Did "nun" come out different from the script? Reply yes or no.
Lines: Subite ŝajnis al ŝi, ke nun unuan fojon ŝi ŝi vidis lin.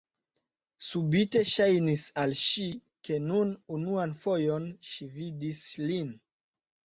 no